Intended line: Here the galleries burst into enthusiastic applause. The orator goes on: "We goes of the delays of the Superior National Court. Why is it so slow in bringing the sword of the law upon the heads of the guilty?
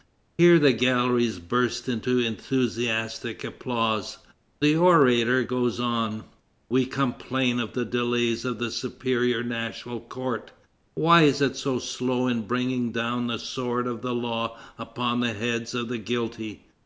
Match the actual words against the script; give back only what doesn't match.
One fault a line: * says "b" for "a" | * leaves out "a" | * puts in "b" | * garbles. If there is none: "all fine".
* says "complain" for "goes"
* puts in "down"